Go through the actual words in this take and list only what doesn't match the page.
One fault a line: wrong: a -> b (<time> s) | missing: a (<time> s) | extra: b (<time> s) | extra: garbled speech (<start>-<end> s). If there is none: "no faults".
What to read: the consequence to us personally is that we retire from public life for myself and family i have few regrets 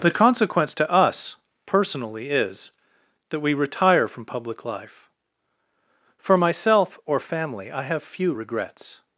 wrong: and -> or (7.0 s)